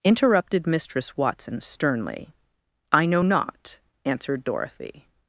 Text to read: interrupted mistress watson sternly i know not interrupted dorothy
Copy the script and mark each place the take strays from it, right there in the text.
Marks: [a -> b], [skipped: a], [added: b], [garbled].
interrupted mistress watson sternly i know not [interrupted -> answered] dorothy